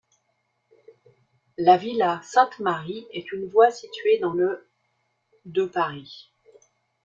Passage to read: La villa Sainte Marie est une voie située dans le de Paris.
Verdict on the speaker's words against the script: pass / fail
pass